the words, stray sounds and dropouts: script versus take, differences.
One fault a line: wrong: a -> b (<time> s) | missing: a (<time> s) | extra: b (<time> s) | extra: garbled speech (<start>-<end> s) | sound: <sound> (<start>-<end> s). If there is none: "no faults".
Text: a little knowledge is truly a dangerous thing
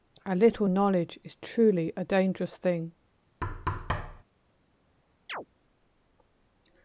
sound: thud (3.4-4.2 s)
sound: chirp (5.3-5.5 s)